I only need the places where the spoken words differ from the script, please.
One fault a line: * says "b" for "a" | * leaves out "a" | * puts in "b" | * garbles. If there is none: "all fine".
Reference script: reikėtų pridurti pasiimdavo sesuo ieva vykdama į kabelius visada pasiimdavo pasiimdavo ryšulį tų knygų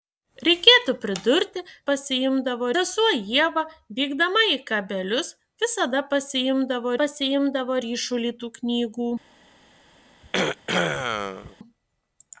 all fine